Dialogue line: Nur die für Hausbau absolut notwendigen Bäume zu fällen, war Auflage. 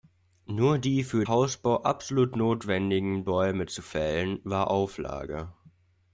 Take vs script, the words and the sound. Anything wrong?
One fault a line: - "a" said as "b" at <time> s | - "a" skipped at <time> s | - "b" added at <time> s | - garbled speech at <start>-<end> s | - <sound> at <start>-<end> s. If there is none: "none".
none